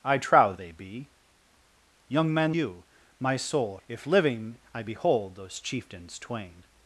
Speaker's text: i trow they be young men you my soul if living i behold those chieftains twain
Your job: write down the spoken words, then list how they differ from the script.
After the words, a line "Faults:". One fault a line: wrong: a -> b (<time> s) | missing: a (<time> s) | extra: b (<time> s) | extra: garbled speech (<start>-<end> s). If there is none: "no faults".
i trow they be young men you my soul if living i behold those chieftains twain
Faults:
no faults